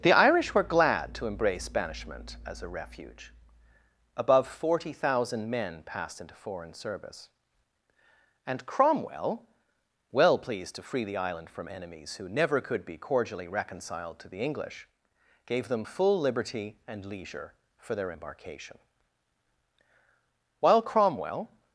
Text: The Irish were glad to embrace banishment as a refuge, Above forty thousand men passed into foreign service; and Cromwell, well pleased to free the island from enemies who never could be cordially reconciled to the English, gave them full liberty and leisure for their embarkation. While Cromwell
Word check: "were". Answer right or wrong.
right